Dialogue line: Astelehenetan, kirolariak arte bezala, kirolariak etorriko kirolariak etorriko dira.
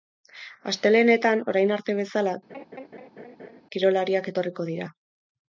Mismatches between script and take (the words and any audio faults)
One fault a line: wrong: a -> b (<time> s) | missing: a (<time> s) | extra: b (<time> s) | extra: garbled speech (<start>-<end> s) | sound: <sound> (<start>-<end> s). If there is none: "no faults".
wrong: kirolariak -> orain (1.5 s)
sound: laugh (2.5-3.6 s)
missing: kirolariak etorriko (4.7 s)